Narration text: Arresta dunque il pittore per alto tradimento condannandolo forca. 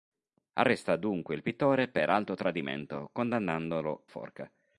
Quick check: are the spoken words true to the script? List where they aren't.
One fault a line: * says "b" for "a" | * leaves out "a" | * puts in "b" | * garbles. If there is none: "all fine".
all fine